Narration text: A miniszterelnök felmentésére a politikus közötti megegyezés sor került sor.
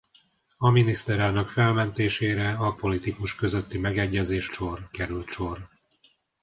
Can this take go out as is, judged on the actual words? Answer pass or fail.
pass